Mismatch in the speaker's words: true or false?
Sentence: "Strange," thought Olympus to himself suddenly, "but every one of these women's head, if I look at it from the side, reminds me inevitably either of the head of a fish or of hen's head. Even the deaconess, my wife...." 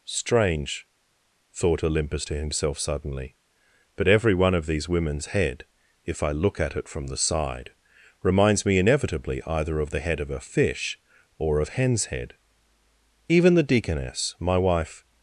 false